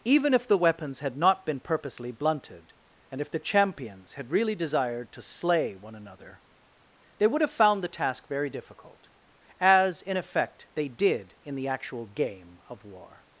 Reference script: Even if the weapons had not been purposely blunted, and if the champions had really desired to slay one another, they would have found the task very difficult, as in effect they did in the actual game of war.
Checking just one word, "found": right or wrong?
right